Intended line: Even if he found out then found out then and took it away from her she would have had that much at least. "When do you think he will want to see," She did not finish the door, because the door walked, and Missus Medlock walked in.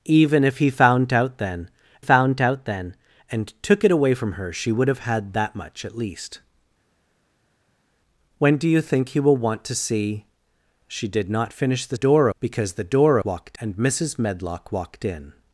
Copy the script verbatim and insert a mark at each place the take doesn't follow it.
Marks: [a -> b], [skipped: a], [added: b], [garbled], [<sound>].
Even if he found out then found out then and took it away from her she would have had that much at least. "When do you think he will want to see," She did not finish the door, because the door walked, and Missus Medlock walked in.